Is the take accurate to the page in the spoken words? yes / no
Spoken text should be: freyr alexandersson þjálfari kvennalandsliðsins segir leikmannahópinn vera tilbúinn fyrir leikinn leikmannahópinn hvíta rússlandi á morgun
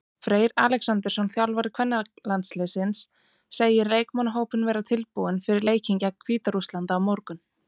no